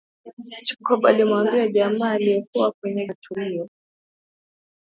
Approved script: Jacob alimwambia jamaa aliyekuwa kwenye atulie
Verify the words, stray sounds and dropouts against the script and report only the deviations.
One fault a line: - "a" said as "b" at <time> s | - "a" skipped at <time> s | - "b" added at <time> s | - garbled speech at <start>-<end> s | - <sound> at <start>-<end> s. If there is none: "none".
none